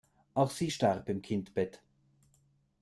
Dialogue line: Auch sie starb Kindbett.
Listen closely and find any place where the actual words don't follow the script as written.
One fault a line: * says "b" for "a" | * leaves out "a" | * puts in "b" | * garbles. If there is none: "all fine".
* puts in "im"